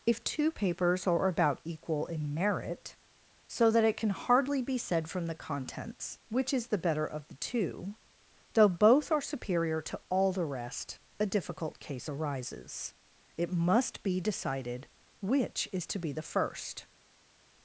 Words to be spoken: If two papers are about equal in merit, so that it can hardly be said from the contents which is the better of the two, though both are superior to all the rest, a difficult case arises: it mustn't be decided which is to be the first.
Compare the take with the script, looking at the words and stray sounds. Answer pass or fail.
fail